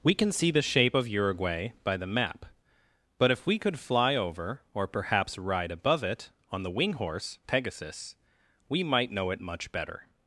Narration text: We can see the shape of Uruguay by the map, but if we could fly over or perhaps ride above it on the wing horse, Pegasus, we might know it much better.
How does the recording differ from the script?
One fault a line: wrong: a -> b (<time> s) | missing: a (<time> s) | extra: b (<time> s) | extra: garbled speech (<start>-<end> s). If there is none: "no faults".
no faults